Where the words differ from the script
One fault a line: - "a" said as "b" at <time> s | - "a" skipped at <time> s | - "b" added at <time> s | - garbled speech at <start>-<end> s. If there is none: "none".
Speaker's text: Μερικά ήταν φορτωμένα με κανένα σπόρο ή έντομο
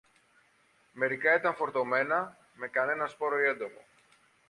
none